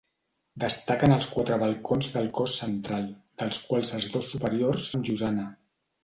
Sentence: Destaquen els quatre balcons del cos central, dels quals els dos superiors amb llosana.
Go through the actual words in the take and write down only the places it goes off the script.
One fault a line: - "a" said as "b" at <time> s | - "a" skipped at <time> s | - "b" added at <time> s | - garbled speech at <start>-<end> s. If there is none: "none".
none